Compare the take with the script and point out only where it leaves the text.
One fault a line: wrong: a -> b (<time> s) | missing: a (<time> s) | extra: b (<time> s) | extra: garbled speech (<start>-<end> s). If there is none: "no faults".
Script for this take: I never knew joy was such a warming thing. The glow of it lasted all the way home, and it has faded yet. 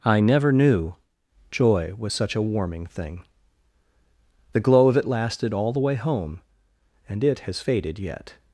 no faults